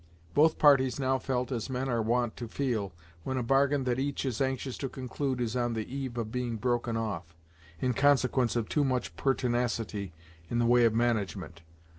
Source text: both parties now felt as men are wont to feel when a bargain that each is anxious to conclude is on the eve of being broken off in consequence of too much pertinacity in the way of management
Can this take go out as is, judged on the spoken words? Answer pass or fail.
pass